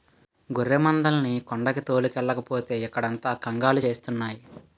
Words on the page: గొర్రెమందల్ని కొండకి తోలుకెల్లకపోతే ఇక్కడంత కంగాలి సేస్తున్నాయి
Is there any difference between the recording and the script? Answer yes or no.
no